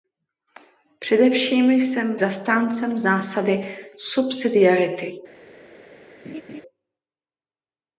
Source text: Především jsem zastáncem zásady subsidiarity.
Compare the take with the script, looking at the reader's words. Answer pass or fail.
pass